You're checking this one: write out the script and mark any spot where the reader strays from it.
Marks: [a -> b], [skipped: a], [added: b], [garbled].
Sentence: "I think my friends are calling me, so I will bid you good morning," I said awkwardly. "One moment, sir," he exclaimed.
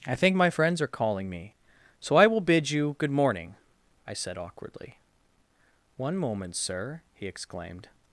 "I think my friends are calling me, so I will bid you good morning," I said awkwardly. "One moment, sir," he exclaimed.